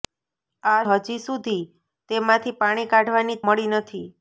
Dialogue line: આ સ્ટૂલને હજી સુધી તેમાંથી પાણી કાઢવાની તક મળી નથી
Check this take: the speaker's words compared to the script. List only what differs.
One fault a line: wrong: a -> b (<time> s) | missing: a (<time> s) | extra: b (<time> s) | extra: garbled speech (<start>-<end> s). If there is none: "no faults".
missing: સ્ટૂલને (0.8 s)
missing: તક (3.4 s)